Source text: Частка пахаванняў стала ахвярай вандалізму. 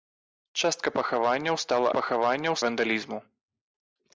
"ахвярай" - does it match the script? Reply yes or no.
no